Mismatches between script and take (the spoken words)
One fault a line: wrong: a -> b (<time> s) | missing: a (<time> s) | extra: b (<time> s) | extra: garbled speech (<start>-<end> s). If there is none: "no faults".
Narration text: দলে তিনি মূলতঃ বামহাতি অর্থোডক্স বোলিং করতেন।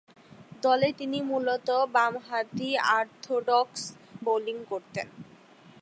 no faults